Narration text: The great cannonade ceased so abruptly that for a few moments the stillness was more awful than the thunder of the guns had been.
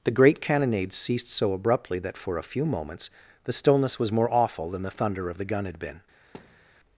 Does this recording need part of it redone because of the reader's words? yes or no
yes